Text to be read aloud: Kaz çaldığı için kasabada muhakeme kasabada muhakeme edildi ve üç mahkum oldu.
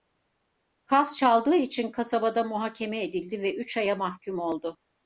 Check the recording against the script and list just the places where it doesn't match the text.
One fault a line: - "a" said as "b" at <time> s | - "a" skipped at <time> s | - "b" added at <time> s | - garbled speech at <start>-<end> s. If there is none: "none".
- "kasabada muhakeme" skipped at 3.0 s
- "aya" added at 3.8 s